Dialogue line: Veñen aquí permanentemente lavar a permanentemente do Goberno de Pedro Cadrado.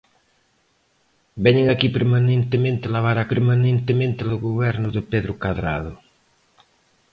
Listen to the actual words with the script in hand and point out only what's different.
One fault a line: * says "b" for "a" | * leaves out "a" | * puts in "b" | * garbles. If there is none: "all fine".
all fine